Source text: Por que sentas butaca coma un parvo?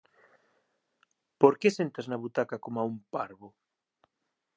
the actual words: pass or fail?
fail